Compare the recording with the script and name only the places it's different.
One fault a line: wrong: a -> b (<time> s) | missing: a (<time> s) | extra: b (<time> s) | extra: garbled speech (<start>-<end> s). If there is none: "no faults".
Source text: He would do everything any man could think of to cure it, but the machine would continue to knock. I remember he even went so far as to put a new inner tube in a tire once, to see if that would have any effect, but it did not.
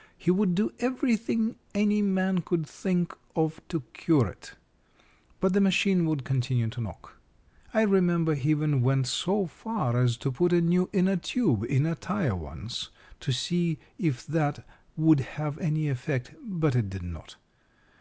no faults